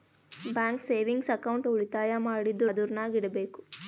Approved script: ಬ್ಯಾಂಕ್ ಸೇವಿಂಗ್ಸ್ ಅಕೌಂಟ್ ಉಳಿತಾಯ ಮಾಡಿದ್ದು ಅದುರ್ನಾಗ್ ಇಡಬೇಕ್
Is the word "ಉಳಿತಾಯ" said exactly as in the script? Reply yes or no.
yes